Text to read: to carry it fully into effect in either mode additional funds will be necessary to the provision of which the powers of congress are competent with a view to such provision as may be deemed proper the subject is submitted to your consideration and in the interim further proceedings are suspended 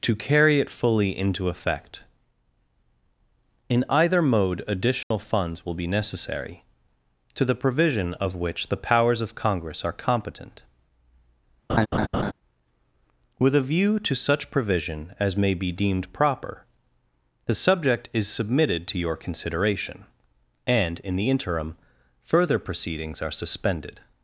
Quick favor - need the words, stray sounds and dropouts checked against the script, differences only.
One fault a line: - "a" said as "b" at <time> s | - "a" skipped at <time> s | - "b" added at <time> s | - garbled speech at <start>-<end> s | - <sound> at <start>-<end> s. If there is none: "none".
- dropout at 5.0-5.1 s
- laugh at 11.7-12.3 s